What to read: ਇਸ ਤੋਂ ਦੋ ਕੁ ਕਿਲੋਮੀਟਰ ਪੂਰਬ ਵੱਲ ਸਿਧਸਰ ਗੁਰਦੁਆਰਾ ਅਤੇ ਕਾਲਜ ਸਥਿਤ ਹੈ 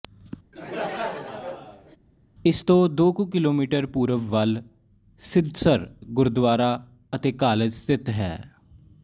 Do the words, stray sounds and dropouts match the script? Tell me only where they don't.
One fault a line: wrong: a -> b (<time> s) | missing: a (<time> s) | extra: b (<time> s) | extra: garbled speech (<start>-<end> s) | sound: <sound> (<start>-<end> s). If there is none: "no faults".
sound: laugh (0.5-2.0 s)